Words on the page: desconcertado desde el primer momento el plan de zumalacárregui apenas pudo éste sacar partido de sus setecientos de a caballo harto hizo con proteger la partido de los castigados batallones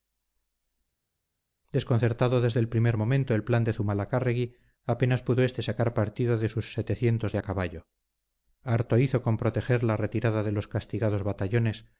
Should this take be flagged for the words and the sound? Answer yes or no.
yes